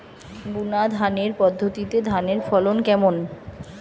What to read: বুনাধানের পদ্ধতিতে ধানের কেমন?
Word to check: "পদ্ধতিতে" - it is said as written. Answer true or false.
true